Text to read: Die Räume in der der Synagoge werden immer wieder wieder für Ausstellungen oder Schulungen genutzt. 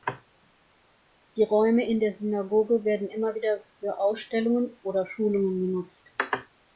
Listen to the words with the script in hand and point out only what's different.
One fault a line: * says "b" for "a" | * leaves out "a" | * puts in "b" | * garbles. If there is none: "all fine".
* leaves out "der"
* leaves out "wieder"